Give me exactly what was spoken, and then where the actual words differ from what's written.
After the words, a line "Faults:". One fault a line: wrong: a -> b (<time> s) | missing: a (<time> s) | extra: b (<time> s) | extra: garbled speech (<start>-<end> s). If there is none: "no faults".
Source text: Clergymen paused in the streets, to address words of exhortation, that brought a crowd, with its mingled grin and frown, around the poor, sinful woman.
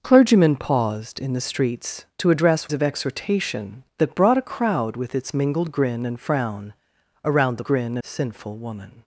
Clergymen paused in the streets, to address of exhortation, that brought a crowd, with its mingled grin and frown, around the grin, sinful woman.
Faults:
missing: words (2.7 s)
wrong: poor -> grin (7.6 s)